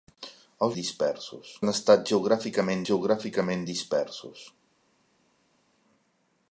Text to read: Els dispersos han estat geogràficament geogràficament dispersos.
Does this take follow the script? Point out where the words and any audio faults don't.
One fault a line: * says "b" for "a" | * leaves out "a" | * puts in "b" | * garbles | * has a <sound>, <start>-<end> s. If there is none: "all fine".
all fine